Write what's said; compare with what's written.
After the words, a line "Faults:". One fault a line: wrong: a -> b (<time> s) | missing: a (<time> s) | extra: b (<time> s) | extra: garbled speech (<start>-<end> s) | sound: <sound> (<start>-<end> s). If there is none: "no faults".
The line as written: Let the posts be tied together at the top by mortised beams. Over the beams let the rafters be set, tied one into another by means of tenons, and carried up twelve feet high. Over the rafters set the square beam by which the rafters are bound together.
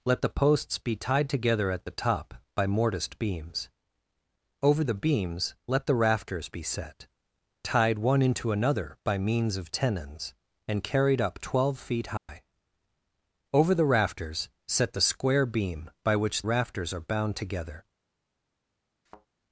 Let the posts be tied together at the top by mortised beams. Over the beams let the rafters be set, tied one into another by means of tenons, and carried up twelve feet high. Over the rafters set the square beam by which rafters are bound together.
Faults:
sound: dropout (12.2-12.3 s)
missing: the (16.4 s)
sound: thud (19.1-19.3 s)